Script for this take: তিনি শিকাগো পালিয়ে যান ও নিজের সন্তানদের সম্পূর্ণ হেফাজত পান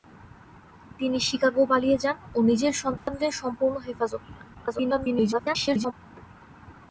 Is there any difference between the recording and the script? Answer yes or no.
yes